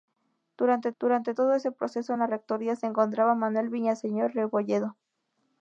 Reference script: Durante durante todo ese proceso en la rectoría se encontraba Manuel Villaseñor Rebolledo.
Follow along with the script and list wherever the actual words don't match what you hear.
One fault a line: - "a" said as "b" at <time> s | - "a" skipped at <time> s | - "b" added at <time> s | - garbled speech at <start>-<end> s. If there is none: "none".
none